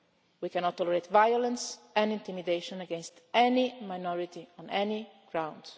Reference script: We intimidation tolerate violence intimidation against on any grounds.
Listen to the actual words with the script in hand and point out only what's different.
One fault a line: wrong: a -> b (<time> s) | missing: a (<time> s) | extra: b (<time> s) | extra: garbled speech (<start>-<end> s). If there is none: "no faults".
wrong: intimidation -> cannot (0.5 s)
extra: and (1.9 s)
extra: any minority (3.3 s)